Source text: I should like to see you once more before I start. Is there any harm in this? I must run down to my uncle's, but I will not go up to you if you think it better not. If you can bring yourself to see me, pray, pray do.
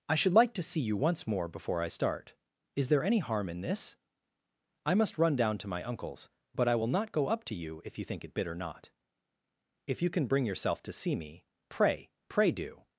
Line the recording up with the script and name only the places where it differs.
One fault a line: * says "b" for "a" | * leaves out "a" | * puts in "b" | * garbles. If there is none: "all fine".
* says "bitter" for "better"